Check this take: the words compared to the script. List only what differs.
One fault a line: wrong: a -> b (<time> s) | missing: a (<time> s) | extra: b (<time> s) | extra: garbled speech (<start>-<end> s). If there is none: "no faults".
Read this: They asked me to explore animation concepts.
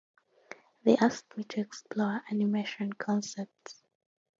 no faults